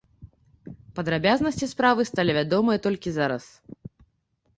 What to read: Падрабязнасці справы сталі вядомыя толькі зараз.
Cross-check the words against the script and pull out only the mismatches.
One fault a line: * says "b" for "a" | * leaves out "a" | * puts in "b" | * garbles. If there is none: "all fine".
all fine